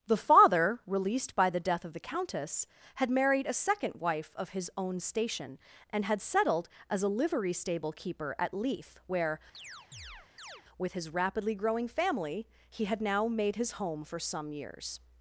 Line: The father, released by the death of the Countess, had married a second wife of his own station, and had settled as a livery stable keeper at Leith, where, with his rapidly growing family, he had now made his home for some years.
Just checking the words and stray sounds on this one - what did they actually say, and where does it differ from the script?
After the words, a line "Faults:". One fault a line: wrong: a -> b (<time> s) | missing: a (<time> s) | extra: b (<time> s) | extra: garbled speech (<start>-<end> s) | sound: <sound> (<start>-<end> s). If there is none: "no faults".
The father, released by the death of the Countess, had married a second wife of his own station, and had settled as a livery stable keeper at Leith, where, with his rapidly growing family, he had now made his home for some years.
Faults:
sound: chirp (9.5-10.6 s)